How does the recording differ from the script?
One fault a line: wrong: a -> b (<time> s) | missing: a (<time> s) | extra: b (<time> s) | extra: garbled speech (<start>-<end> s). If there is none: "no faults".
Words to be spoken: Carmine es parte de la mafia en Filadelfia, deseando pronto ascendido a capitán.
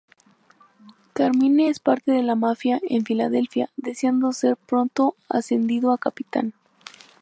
extra: ser (4.3 s)